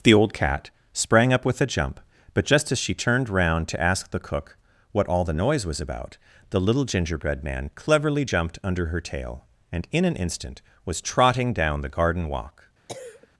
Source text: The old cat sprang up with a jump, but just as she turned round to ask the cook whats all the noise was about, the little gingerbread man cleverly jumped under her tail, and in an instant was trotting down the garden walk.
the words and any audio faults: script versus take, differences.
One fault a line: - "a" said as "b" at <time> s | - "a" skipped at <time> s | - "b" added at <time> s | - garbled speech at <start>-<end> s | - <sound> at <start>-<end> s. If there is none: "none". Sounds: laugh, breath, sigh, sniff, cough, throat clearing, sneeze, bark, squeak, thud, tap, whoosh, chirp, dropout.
- "whats" said as "what" at 4.9 s
- cough at 12.9-13.3 s